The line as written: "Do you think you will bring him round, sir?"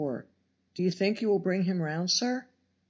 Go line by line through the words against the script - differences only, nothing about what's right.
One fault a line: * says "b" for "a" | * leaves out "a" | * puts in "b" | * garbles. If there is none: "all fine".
all fine